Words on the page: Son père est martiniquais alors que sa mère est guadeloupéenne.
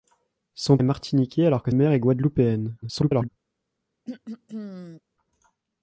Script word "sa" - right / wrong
wrong